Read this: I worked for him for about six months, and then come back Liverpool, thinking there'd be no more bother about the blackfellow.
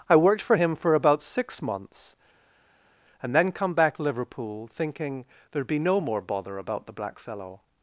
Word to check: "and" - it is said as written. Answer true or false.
true